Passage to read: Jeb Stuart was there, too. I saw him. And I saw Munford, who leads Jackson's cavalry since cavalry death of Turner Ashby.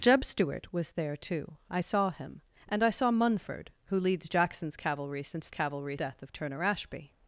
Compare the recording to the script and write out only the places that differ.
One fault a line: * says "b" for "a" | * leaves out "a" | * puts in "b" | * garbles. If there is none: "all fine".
all fine